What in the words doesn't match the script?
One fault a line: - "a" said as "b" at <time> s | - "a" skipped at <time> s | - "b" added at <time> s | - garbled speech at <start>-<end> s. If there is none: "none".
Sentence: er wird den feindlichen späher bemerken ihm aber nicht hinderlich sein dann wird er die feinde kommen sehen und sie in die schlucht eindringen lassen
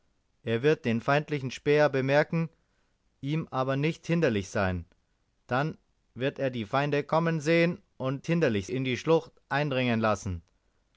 - "sie" said as "hinderlich" at 8.3 s